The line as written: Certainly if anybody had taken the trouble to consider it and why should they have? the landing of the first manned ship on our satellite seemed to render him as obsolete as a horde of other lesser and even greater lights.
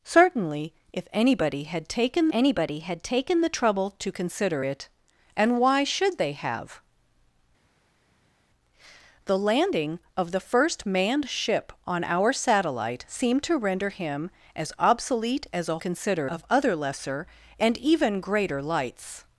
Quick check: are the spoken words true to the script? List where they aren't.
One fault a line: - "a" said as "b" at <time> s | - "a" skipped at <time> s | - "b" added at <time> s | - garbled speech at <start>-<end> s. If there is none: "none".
- "anybody had taken" added at 2.3 s
- "horde" said as "consider" at 15.8 s